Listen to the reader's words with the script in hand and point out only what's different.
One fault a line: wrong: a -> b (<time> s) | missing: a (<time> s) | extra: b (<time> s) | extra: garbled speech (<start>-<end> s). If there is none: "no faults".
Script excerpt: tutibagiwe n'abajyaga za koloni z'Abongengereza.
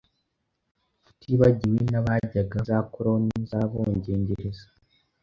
no faults